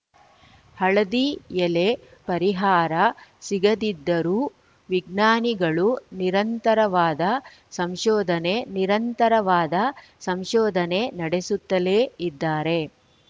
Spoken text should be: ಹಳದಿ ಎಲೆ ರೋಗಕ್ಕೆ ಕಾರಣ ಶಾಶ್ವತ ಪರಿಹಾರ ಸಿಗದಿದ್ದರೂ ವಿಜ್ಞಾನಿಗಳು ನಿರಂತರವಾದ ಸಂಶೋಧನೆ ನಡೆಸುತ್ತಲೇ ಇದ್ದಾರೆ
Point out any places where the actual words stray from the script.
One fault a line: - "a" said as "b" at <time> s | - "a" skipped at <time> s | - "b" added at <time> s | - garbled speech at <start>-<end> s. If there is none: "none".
- "ರೋಗಕ್ಕೆ ಕಾರಣ ಶಾಶ್ವತ" skipped at 1.9 s
- "ನಿರಂತರವಾದ ಸಂಶೋಧನೆ" added at 8.8 s